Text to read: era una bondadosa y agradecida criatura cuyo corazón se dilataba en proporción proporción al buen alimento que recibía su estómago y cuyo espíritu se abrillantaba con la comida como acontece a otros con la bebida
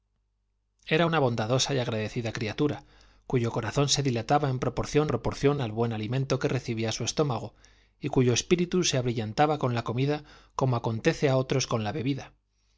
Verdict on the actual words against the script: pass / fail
pass